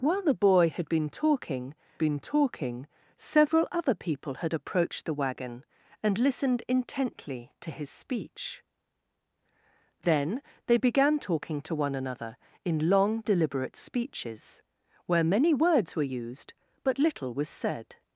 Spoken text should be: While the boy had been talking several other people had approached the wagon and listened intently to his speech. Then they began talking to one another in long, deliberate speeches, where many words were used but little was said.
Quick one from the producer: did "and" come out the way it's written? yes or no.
yes